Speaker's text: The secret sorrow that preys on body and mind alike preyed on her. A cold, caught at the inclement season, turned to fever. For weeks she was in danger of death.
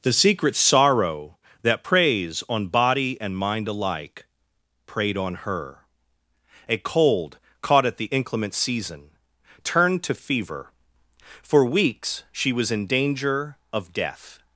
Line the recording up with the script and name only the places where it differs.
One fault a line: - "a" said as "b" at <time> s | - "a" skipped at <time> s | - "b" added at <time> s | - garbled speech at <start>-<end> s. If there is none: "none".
none